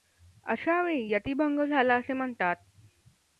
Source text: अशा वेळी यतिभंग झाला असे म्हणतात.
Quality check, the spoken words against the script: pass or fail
pass